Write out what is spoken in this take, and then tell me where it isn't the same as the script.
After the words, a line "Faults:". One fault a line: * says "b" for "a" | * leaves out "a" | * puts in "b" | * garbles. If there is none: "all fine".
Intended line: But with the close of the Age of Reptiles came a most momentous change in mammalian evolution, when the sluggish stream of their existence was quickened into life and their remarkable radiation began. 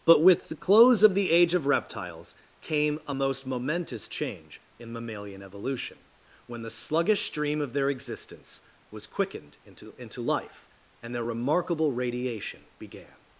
But with the close of the Age of Reptiles came a most momentous change in mammalian evolution, when the sluggish stream of their existence was quickened into into life and their remarkable radiation began.
Faults:
* puts in "into"